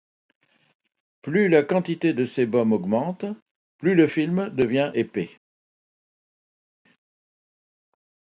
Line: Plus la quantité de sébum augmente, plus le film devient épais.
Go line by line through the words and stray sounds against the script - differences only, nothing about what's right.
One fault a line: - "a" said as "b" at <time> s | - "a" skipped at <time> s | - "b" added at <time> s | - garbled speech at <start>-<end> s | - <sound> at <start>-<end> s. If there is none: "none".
none